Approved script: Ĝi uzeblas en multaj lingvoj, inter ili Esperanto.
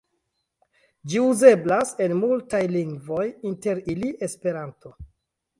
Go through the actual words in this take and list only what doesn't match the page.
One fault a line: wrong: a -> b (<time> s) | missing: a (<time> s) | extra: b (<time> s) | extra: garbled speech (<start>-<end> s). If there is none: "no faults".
no faults